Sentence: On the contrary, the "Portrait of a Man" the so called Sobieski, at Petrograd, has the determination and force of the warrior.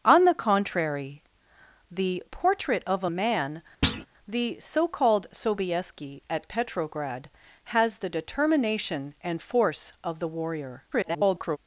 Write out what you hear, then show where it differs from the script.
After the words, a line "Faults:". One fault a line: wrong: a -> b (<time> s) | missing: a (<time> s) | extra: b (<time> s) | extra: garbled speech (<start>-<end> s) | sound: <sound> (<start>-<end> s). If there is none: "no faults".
On the contrary, the "Portrait of a Man" the so called Sobieski, at Petrograd, has the determination and force of the warrior. [garbled]
Faults:
sound: thud (3.8-4.1 s)
extra: garbled speech (10.9-11.6 s)